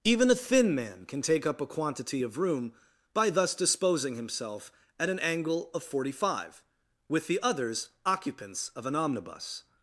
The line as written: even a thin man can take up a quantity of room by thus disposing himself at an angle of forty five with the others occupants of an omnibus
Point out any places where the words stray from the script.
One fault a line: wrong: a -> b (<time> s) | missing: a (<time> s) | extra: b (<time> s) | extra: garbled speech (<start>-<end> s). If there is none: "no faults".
no faults